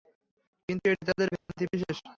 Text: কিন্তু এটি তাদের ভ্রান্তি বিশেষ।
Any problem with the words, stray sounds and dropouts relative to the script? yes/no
yes